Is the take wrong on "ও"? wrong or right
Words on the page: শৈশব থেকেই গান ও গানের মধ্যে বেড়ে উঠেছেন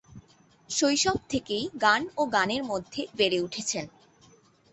right